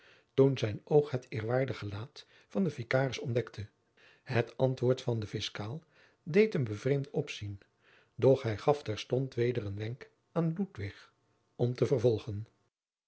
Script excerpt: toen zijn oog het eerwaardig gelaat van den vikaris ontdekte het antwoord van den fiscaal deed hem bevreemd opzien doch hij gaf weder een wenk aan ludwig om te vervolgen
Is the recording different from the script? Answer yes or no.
yes